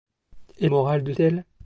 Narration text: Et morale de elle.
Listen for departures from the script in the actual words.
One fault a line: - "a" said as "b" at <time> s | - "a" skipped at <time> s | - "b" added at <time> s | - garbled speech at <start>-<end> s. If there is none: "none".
none